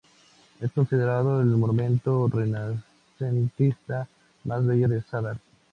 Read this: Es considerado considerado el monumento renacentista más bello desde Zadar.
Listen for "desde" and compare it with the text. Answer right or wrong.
wrong